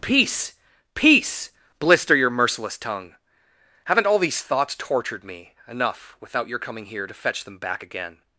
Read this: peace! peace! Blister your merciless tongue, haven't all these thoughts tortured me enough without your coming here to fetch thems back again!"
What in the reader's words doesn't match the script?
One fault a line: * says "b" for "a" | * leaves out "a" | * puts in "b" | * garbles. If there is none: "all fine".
* says "them" for "thems"